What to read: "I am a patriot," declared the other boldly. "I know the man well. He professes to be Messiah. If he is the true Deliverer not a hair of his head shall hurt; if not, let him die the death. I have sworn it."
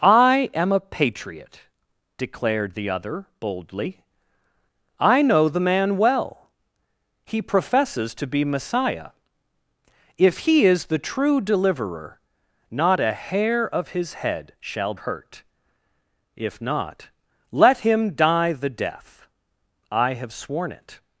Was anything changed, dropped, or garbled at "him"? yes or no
no